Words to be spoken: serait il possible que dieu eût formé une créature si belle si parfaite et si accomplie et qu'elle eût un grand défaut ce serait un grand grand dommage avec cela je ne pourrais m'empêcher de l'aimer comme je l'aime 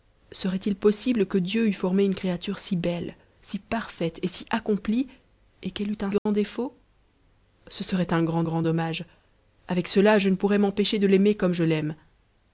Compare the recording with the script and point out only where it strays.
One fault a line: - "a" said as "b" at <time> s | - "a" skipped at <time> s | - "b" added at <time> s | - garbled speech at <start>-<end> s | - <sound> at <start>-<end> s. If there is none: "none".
- dropout at 6.2-6.3 s